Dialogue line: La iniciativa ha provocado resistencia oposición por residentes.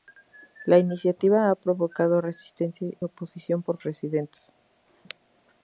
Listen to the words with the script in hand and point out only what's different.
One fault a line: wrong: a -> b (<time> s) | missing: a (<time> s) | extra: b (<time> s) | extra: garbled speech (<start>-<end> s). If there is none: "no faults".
no faults